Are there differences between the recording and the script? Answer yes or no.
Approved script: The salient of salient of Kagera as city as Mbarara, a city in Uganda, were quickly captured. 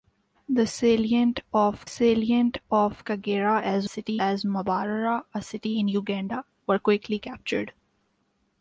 no